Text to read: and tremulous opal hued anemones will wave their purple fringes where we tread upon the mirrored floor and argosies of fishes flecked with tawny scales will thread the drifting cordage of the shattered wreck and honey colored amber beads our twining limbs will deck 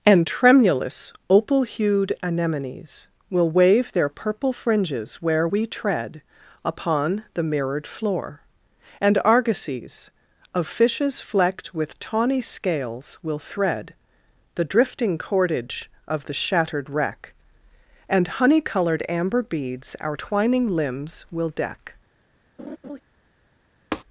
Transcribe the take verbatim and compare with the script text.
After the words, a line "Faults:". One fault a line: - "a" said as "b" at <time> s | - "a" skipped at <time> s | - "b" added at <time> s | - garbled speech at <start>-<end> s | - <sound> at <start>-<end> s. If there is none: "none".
and tremulous opal hued anemones will wave their purple fringes where we tread upon the mirrored floor and argosies of fishes flecked with tawny scales will thread the drifting cordage of the shattered wreck and honey colored amber beads our twining limbs will deck
Faults:
- laugh at 22.6-23.0 s
- tap at 23.9-24.0 s